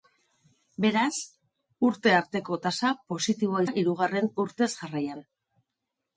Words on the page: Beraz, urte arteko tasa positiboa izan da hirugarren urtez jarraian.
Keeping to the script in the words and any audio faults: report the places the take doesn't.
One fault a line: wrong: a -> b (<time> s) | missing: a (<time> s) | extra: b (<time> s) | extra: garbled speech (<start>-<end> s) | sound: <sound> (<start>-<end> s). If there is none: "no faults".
missing: izan (3.6 s)